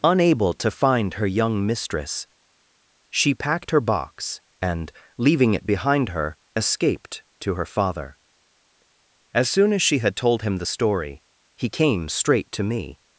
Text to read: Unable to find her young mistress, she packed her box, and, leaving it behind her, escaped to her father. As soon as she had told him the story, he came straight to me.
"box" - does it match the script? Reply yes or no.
yes